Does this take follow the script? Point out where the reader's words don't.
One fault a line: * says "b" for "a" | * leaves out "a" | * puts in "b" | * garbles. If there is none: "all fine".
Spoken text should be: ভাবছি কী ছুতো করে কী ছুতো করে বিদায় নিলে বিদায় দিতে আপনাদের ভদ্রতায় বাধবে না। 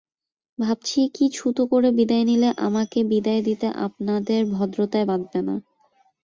* leaves out "কী ছুতো করে"
* puts in "আমাকে"